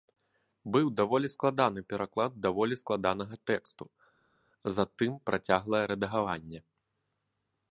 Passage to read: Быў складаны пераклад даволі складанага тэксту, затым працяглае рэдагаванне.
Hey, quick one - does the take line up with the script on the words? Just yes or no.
no